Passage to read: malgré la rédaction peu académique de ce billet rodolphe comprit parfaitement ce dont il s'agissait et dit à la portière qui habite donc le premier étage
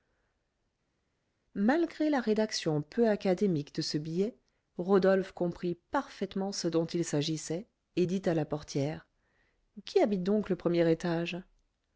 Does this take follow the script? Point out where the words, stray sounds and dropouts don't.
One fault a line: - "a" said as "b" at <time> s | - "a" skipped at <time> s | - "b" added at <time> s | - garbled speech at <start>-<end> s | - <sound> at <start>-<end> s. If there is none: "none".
none